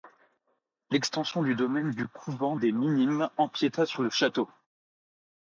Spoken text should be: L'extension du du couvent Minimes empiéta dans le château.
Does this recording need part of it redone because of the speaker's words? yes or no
yes